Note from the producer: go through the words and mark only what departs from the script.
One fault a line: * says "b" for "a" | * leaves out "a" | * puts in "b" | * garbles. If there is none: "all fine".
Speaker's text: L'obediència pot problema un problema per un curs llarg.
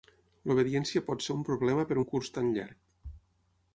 * says "ser" for "problema"
* puts in "tan"